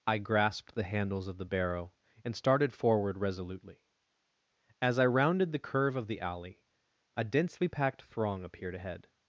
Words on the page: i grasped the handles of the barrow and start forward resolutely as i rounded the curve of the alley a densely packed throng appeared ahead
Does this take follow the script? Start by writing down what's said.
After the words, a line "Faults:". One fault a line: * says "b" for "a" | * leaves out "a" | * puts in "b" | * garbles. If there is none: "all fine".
i grasped the handles of the barrow and started forward resolutely as i rounded the curve of the alley a densely packed throng appeared ahead
Faults:
* says "started" for "start"